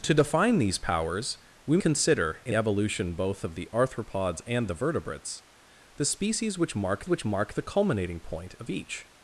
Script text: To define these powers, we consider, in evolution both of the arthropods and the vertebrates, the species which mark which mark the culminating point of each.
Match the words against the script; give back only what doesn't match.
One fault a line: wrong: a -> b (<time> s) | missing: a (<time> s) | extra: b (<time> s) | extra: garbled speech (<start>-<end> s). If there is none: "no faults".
no faults